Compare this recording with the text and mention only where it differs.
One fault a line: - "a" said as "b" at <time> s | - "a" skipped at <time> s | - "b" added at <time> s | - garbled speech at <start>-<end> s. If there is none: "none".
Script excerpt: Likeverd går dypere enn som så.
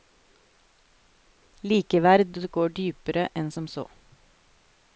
none